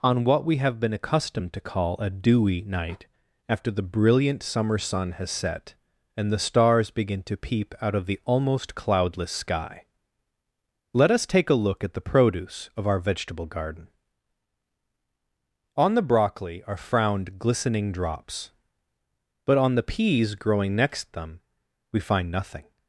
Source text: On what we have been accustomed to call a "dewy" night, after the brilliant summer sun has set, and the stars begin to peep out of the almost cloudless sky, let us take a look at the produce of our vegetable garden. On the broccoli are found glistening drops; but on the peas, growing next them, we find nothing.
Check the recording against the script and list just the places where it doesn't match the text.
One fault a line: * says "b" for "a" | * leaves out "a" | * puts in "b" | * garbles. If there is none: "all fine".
* says "frowned" for "found"